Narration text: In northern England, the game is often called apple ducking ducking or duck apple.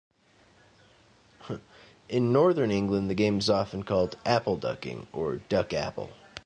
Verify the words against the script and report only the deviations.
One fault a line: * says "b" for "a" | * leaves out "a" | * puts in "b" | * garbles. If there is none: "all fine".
* leaves out "ducking"